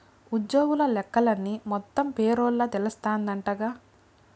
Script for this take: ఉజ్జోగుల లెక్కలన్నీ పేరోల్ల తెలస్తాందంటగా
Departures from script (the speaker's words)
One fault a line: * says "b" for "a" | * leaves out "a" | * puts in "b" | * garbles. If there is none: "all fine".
* puts in "మొత్తం"